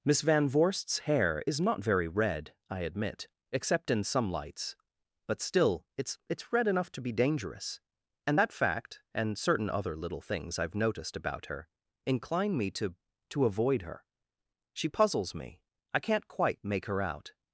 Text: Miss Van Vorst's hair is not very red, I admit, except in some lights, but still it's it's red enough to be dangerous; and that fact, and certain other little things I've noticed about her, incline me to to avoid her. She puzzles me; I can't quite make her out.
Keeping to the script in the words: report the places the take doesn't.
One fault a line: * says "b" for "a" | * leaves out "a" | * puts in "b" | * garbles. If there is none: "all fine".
all fine